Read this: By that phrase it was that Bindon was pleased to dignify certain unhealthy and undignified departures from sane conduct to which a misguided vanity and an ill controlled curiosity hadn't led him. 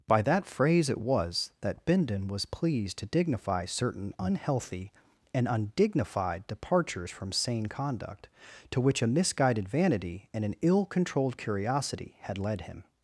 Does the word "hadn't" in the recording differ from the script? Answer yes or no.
yes